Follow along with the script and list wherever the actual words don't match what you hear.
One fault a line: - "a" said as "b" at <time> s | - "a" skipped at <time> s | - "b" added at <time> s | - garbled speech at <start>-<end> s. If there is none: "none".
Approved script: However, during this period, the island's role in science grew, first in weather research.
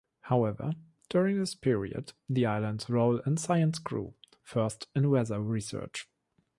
none